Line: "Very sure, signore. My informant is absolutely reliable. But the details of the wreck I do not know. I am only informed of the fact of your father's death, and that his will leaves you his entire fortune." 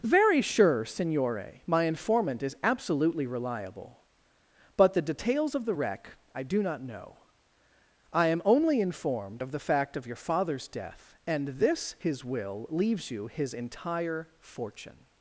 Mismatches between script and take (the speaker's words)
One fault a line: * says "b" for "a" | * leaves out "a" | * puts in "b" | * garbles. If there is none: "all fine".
* says "this" for "that"